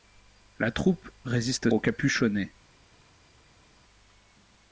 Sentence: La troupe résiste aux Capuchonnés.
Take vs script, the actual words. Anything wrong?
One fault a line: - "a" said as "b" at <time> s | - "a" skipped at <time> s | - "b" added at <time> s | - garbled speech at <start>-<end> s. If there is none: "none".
none